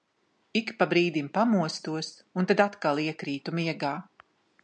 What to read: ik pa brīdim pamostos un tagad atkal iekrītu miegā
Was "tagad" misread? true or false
true